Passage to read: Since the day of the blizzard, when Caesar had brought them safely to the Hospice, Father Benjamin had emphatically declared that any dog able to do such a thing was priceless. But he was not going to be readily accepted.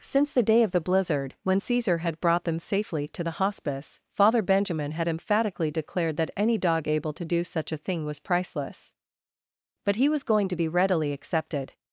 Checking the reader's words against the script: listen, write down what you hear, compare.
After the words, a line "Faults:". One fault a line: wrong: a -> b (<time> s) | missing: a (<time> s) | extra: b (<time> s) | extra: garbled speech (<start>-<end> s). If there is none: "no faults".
Since the day of the blizzard, when Caesar had brought them safely to the Hospice, Father Benjamin had emphatically declared that any dog able to do such a thing was priceless. But he was going to be readily accepted.
Faults:
missing: not (10.2 s)